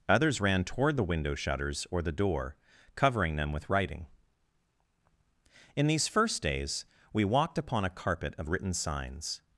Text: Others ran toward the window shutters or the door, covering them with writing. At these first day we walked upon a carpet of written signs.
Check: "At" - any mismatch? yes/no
yes